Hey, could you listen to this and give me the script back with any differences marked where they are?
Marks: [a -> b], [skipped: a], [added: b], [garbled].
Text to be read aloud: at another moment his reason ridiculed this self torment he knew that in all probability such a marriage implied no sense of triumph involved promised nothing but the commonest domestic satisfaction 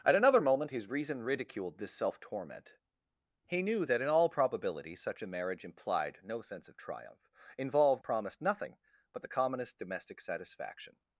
at another moment his reason ridiculed this self torment he knew that in all probability such a marriage implied no sense of triumph involved promised nothing but the commonest domestic satisfaction